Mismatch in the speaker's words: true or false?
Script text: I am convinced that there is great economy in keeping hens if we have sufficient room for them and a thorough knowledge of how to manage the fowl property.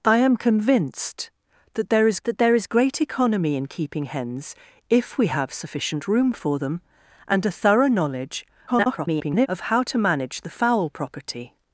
true